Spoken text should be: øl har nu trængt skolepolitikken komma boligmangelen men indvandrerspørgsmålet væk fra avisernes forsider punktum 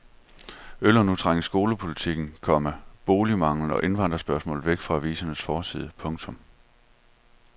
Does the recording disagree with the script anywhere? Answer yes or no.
yes